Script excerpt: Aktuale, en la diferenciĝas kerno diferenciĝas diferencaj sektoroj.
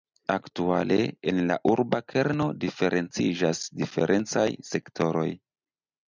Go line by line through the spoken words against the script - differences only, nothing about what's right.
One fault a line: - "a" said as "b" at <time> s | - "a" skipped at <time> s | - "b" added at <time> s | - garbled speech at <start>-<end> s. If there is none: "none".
- "diferenciĝas" said as "urba" at 1.7 s